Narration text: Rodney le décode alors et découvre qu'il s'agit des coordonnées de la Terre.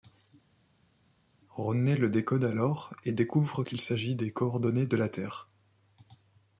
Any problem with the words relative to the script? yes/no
no